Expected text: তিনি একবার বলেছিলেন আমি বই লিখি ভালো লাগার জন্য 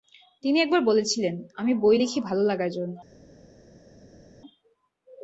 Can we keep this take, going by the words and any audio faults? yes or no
yes